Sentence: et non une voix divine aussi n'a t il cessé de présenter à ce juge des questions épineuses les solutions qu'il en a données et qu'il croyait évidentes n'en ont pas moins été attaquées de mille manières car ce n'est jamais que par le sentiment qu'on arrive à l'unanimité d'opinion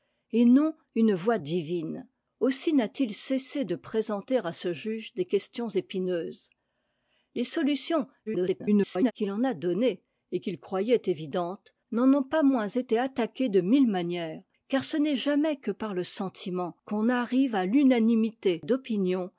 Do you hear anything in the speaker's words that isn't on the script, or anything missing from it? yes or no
yes